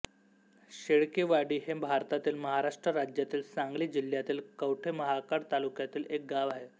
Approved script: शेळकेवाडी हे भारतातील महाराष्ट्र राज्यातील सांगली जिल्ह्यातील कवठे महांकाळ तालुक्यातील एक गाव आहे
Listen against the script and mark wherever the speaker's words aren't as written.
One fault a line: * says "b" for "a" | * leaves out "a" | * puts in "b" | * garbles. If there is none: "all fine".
all fine